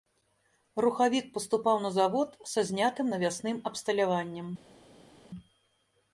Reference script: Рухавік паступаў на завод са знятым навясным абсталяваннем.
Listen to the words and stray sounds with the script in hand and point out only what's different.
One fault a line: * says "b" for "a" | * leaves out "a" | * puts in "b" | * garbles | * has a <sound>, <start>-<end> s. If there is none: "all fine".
all fine